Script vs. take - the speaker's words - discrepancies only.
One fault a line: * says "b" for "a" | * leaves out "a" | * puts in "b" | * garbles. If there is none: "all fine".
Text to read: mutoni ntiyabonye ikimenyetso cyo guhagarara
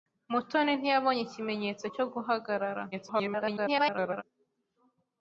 * garbles